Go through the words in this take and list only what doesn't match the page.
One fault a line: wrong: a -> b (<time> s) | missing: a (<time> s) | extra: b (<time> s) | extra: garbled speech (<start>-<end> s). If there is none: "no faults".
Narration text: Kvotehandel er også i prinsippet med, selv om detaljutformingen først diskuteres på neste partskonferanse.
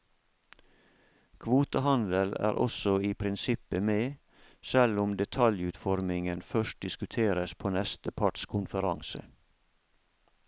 no faults